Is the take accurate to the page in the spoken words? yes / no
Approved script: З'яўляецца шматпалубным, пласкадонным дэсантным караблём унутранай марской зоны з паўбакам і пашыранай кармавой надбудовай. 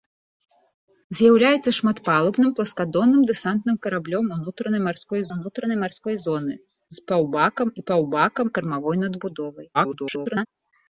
no